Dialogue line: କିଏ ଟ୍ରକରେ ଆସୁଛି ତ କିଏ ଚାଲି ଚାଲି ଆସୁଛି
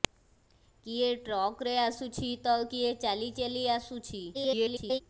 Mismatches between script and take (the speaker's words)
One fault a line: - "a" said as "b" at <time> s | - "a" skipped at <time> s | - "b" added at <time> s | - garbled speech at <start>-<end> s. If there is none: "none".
- garbled speech at 4.3-5.0 s